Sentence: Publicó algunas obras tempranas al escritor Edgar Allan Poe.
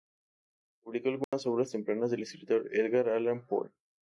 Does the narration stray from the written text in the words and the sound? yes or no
yes